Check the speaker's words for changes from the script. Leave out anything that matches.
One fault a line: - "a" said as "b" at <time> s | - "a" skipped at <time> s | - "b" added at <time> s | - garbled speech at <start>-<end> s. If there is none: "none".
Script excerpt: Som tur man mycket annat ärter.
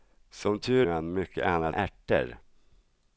none